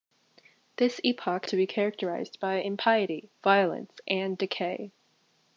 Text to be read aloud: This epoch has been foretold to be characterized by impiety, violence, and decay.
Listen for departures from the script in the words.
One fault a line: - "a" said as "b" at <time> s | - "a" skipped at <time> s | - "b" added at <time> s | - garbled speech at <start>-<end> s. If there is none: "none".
- "has been foretold" skipped at 1.4 s